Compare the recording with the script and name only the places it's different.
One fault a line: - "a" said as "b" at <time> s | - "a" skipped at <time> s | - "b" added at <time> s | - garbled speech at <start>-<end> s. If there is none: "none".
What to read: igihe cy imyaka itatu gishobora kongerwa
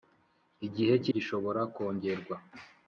- "imyaka itatu" skipped at 1.1 s